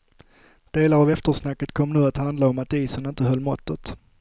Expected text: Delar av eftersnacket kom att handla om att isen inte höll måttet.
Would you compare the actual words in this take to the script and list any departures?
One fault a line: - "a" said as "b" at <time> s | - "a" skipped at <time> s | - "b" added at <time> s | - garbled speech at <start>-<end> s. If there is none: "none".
- "nu" added at 1.9 s